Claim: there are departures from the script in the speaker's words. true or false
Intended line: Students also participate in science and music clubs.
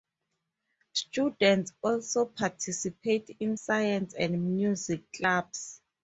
false